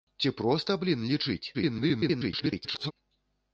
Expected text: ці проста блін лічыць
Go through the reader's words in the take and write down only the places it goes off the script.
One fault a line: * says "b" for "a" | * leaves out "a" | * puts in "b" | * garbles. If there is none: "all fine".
* garbles